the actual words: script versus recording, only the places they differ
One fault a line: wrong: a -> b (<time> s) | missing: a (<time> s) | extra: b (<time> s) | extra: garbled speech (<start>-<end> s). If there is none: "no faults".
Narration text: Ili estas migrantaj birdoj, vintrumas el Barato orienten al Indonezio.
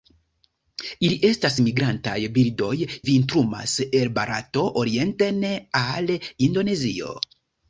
no faults